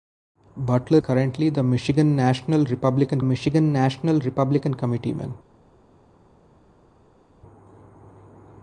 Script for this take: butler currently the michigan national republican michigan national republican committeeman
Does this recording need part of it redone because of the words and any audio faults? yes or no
no